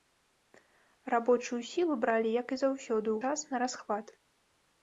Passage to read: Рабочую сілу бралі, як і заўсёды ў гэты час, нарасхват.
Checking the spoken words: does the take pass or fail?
fail